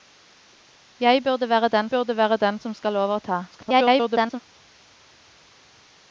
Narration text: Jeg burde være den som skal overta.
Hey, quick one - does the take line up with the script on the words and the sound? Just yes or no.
no